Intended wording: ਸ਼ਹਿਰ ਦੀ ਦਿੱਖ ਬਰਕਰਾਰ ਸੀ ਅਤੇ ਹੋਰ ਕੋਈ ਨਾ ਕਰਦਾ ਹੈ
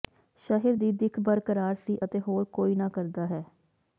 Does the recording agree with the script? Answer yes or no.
yes